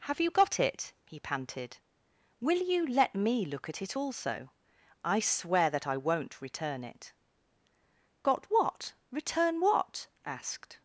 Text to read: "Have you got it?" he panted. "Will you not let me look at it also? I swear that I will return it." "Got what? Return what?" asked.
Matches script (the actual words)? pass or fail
fail